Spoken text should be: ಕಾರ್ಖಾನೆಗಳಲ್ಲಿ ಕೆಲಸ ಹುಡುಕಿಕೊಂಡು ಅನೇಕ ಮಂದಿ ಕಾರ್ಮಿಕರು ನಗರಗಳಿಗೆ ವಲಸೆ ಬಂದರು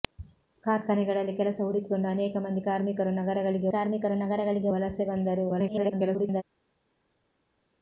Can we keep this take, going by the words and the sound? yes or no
no